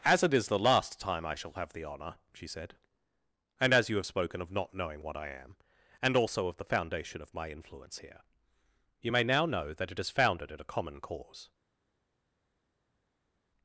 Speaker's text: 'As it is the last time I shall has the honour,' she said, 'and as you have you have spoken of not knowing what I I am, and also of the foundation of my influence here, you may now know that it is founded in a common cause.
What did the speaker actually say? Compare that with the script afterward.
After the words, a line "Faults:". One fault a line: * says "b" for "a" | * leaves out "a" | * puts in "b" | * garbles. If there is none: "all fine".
'As it is the last time I shall have the honour,' she said, 'and as you have spoken of not knowing what I am, and also of the foundation of my influence here, you may now know that it is founded in a common cause.
Faults:
* says "have" for "has"
* leaves out "you have"
* leaves out "I"